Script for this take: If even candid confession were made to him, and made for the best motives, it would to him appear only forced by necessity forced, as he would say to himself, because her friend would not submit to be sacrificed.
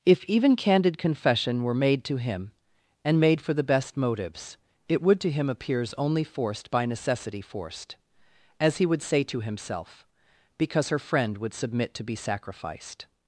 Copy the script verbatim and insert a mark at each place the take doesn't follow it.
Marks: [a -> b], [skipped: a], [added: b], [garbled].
If even candid confession were made to him, and made for the best motives, it would to him [appear -> appears] only forced by necessity forced, as he would say to himself, because her friend would [skipped: not] submit to be sacrificed.